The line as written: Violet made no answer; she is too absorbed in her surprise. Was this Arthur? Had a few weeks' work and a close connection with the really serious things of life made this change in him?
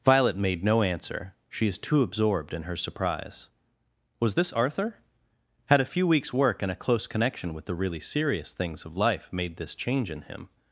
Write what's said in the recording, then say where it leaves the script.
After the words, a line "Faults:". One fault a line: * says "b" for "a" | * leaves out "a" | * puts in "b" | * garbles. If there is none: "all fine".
Violet made no answer; she is too absorbed in her surprise. Was this Arthur? Had a few weeks' work and a close connection with the really serious things of life made this change in him?
Faults:
all fine